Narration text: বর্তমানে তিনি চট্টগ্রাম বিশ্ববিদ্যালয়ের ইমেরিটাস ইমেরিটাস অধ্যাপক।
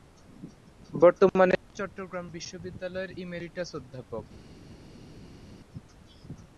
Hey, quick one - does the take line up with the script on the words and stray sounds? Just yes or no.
no